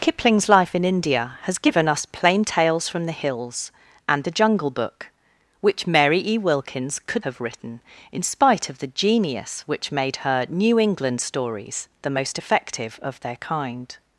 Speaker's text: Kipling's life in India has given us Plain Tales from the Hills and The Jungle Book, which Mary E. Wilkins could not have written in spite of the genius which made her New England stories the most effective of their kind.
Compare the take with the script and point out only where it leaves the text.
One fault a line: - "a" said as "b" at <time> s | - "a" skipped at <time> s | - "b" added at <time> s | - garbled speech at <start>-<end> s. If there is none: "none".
- "not" skipped at 7.2 s